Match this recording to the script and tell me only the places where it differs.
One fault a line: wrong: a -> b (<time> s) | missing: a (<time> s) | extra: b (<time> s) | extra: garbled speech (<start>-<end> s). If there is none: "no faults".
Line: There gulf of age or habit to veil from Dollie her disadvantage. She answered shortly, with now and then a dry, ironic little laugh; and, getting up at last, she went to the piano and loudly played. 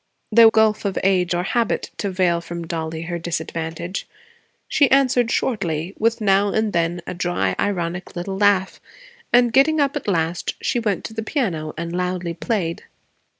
no faults